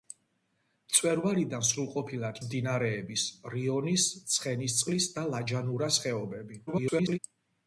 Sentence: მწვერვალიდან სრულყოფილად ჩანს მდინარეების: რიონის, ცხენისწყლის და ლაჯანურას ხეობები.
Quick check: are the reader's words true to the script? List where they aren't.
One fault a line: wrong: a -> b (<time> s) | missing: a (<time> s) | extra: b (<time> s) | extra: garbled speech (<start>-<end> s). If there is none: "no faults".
missing: ჩანს (2.4 s)
extra: garbled speech (6.7-7.2 s)